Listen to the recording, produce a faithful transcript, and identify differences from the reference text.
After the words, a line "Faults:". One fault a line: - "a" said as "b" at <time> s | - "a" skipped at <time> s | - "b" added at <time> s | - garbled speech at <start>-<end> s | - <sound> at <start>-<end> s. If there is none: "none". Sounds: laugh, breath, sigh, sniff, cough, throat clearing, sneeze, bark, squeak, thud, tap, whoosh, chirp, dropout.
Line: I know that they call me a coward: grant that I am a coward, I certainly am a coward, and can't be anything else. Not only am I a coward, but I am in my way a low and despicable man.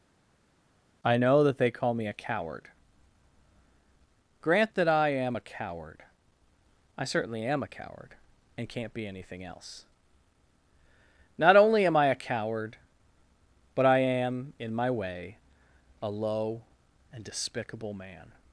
I know that they call me a coward: grant that I am a coward, I certainly am a coward, and can't be anything else. Not only am I a coward, but I am in my way a low and despicable man.
Faults:
none